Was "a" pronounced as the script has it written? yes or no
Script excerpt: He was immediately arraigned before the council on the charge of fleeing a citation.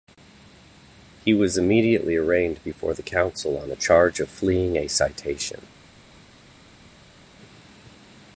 yes